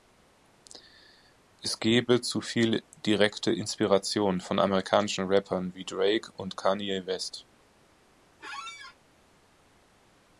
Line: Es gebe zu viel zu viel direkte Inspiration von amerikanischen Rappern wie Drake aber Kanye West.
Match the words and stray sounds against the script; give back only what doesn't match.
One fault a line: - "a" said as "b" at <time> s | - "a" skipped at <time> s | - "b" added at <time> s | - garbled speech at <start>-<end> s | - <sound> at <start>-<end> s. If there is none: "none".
- "zu viel" skipped at 2.8 s
- "aber" said as "und" at 6.3 s
- squeak at 8.4-9.0 s